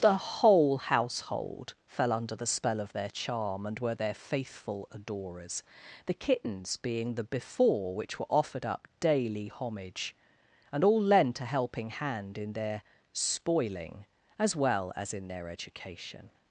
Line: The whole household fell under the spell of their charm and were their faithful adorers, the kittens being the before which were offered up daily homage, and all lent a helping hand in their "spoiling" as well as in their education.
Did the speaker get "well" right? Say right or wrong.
right